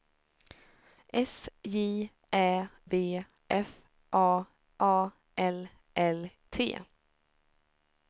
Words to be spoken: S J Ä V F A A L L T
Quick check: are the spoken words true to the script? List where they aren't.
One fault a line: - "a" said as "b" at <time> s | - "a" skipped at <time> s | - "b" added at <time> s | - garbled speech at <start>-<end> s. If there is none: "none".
none